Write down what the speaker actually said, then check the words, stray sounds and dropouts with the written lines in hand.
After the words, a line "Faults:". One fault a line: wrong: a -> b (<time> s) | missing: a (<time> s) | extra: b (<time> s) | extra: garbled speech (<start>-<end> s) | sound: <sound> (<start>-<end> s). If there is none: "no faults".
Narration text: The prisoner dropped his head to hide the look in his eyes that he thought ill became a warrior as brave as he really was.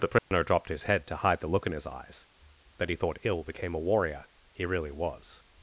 The prisoner dropped his head to hide the look in his eyes that he thought ill became a warrior he really was.
Faults:
sound: dropout (0.2-0.3 s)
missing: as brave as (4.3 s)